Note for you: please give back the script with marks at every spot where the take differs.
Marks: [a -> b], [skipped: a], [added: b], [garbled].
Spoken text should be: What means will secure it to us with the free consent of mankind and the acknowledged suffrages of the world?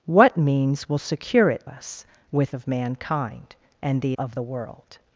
What means will secure it [skipped: to] us with [skipped: the free consent] of mankind and the [skipped: acknowledged suffrages] of the world?